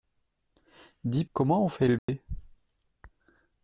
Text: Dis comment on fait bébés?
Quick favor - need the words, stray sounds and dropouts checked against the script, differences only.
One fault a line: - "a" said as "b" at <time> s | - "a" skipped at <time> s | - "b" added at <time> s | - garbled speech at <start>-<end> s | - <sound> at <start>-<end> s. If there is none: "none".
- dropout at 2.0-2.1 s